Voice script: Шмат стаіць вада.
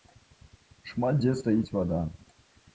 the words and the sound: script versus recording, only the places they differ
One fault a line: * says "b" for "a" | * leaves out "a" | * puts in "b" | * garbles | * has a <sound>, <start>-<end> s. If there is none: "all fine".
* puts in "дзе"